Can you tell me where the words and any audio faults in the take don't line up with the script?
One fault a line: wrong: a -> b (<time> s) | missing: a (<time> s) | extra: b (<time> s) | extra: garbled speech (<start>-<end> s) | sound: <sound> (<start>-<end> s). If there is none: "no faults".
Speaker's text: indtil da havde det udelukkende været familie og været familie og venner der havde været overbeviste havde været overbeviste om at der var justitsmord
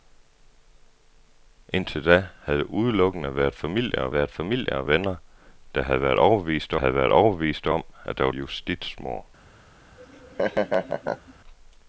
sound: laugh (10.0-11.3 s)